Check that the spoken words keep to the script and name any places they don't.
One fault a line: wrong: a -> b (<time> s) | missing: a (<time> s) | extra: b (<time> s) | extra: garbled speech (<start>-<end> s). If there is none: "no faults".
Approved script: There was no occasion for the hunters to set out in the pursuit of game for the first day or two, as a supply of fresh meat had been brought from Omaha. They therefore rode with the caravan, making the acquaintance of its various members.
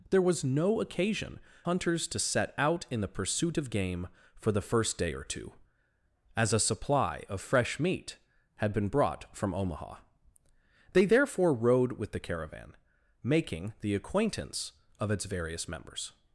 missing: for the (1.4 s)